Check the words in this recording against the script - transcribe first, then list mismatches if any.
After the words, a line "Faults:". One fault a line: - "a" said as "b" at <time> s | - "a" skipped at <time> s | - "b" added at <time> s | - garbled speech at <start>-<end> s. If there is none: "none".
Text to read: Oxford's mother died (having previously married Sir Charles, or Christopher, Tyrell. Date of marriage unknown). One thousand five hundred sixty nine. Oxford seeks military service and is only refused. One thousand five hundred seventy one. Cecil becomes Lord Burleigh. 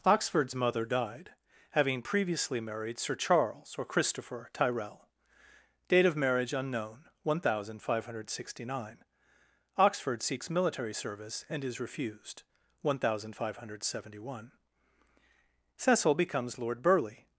Oxford's mother died (having previously married Sir Charles, or Christopher, Tyrell. Date of marriage unknown). One thousand five hundred sixty nine. Oxford seeks military service and is refused. One thousand five hundred seventy one. Cecil becomes Lord Burleigh.
Faults:
- "only" skipped at 11.8 s